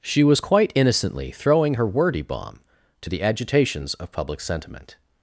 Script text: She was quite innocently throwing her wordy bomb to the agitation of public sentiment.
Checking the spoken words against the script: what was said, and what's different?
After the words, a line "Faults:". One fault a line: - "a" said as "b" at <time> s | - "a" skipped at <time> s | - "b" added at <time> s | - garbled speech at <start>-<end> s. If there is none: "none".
She was quite innocently throwing her wordy bomb to the agitations of public sentiment.
Faults:
- "agitation" said as "agitations" at 3.2 s